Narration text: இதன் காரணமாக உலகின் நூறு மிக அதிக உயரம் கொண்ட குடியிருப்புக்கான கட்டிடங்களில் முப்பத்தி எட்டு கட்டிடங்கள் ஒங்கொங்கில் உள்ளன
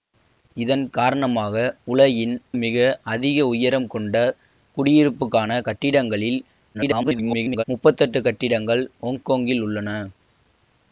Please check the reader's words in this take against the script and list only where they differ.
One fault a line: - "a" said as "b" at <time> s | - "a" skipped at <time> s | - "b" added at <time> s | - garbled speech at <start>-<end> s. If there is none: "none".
- "நூறு" skipped at 2.3 s
- garbled speech at 6.7-7.6 s